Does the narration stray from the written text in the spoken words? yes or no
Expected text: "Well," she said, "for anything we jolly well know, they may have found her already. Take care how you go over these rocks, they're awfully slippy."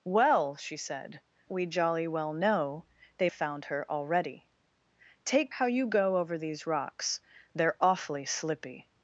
yes